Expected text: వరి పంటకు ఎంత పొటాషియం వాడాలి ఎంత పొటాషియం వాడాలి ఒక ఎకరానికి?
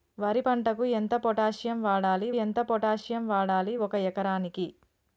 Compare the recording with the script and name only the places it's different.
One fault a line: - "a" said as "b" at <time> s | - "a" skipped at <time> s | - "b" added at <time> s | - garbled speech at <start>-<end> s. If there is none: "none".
none